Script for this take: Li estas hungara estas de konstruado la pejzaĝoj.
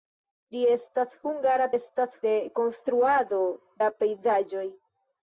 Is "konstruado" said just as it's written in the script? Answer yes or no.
yes